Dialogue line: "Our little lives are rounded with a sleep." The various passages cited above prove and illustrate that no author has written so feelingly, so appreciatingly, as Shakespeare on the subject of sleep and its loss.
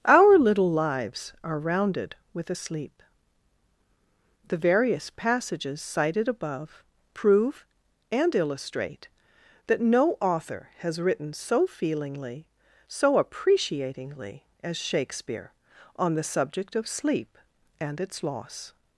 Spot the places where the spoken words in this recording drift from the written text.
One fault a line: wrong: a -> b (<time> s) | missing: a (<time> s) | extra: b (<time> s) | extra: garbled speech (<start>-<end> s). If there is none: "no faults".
no faults